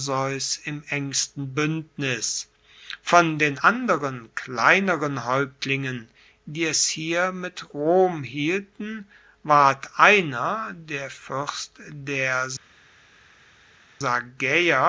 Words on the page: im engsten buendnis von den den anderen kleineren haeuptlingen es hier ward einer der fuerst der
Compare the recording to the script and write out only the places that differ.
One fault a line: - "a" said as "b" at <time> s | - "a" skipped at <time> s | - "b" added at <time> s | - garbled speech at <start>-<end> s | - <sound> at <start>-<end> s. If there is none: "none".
- "den" skipped at 3.6 s
- "die" added at 6.4 s
- "mit rom hielten" added at 7.3 s